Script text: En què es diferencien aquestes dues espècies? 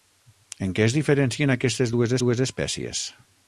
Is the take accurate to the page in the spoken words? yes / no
no